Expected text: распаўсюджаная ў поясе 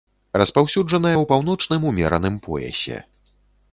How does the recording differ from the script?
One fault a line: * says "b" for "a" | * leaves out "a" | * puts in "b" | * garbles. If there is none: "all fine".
* puts in "паўночным умераным"